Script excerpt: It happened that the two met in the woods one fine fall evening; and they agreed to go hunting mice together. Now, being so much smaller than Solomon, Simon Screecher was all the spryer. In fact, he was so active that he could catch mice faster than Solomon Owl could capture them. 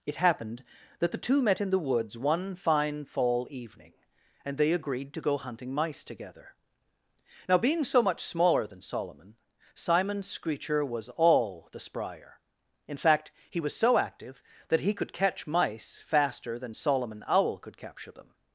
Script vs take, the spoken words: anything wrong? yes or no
no